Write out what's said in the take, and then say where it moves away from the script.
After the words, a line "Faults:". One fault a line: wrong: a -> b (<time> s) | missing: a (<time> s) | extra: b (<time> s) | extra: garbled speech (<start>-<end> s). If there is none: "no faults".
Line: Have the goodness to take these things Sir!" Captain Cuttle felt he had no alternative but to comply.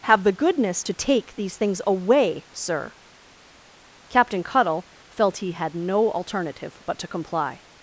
Have the goodness to take these things away, Sir!" Captain Cuttle felt he had no alternative but to comply.
Faults:
extra: away (1.8 s)